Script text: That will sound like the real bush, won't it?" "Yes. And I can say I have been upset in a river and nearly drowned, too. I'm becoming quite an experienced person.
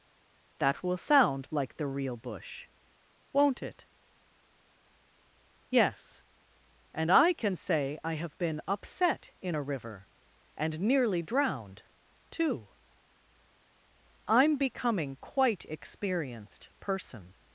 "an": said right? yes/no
no